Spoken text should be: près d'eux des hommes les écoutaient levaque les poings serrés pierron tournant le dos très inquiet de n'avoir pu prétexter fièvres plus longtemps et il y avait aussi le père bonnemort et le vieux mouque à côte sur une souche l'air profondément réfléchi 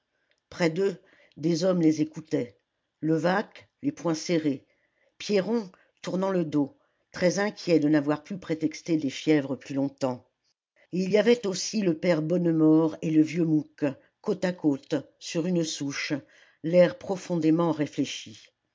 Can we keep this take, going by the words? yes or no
no